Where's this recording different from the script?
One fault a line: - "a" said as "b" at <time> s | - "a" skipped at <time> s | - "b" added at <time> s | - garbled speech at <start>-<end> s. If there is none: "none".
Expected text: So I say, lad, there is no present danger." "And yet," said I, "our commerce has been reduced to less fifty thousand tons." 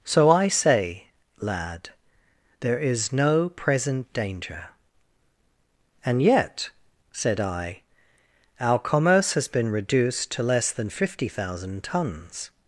- "than" added at 10.7 s